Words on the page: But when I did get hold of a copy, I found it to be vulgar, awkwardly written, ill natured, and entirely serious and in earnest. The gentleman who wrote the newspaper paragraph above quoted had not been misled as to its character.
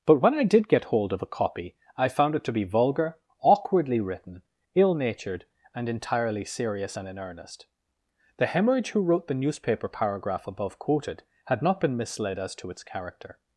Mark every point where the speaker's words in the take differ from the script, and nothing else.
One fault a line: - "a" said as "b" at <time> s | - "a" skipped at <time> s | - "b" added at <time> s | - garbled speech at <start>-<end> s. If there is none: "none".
- "gentleman" said as "hemorrhage" at 8.5 s